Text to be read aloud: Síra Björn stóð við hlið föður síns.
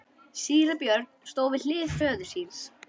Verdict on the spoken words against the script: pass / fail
pass